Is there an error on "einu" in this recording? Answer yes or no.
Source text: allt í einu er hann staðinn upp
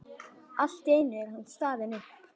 no